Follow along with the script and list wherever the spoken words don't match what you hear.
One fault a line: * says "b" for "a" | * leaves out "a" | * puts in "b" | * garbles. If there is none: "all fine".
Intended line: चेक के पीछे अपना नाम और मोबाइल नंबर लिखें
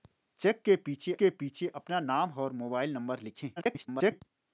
* puts in "के पीछे"
* garbles